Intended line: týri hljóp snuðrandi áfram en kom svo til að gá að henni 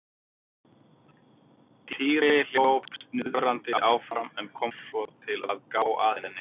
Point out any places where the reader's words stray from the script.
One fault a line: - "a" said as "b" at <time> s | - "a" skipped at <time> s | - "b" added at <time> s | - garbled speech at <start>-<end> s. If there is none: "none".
none